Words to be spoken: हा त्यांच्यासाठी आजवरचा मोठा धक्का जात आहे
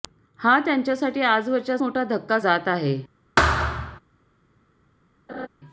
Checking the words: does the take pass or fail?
pass